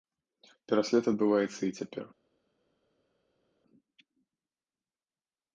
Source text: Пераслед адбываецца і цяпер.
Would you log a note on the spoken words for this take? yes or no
no